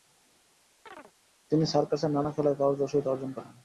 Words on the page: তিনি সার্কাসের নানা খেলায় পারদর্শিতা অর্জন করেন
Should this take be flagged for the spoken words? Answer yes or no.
no